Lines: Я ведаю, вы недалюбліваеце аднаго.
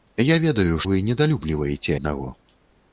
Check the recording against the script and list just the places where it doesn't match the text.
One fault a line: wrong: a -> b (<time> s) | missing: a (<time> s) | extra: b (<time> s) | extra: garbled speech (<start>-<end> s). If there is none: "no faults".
no faults